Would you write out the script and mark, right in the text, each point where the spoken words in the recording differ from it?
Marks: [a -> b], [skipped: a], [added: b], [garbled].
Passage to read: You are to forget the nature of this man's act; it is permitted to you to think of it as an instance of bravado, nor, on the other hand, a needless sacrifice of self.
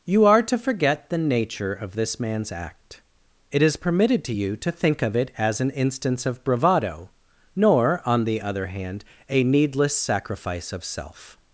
You are to forget the nature of this man's act; it is permitted to you to think of it as an instance of bravado, nor, on the other hand, a needless sacrifice of self.